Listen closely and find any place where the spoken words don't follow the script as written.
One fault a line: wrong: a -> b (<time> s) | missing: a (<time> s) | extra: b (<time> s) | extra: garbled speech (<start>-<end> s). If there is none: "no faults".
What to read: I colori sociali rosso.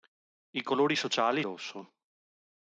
no faults